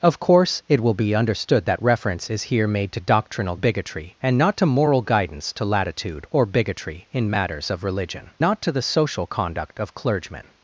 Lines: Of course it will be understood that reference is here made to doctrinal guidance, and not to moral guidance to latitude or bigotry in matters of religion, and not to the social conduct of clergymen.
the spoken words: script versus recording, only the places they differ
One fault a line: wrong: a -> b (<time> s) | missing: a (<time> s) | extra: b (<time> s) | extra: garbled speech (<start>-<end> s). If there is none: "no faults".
wrong: guidance -> bigotry (3.5 s)
missing: and (8.3 s)